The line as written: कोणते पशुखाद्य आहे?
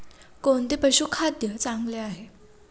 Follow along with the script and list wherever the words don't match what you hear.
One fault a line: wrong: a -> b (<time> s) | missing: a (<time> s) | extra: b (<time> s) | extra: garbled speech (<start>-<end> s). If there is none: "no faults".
extra: चांगले (1.6 s)